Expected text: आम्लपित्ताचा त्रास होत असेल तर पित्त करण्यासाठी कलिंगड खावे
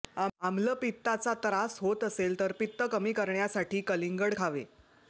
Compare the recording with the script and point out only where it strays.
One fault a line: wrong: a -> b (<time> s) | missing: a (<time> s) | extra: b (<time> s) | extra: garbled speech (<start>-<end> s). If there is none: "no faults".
extra: कमी (2.9 s)